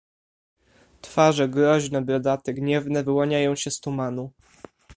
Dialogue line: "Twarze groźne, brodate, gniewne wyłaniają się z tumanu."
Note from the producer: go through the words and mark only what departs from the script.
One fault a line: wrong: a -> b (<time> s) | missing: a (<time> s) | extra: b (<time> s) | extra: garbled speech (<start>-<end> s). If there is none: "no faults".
no faults